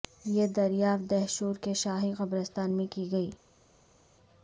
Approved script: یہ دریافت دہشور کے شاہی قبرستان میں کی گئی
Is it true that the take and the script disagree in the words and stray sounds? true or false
false